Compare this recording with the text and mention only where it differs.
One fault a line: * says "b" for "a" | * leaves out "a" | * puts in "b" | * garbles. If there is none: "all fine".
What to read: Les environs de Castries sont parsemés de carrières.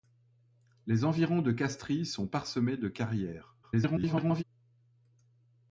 * garbles